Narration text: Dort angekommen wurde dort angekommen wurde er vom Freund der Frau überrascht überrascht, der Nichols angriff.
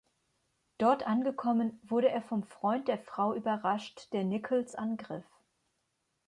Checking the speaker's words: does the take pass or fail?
fail